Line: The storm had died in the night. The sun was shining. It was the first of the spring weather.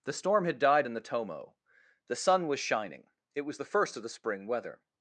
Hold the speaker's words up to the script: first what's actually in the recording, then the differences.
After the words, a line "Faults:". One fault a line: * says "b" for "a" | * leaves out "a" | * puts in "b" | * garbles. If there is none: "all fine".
The storm had died in the tomo. The sun was shining. It was the first of the spring weather.
Faults:
* says "tomo" for "night"